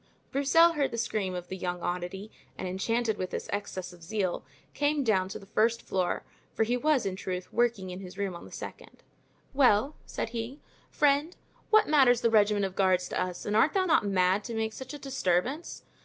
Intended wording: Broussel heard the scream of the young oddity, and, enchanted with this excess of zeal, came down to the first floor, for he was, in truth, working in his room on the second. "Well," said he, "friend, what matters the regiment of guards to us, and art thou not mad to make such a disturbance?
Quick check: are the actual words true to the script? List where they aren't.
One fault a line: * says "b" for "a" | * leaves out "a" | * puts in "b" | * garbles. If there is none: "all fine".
all fine